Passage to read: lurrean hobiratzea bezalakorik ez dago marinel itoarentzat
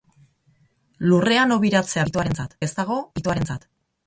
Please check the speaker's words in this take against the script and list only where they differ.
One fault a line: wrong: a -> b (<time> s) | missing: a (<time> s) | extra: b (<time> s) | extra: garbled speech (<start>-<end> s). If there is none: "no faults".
wrong: bezalakorik -> itoarentzat (2.1 s)
missing: marinel (3.0 s)